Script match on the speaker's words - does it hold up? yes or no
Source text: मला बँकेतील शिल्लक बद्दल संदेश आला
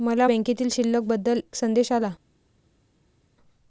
yes